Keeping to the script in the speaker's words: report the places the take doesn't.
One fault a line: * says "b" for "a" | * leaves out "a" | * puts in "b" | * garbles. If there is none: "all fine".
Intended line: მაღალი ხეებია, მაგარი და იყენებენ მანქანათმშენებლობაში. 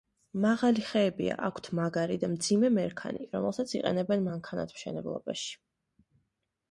* puts in "აქვთ"
* puts in "მძიმე მერქანი რომელსაც"